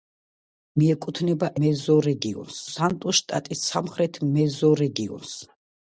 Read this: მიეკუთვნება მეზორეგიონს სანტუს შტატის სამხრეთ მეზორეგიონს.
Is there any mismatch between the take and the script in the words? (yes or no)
no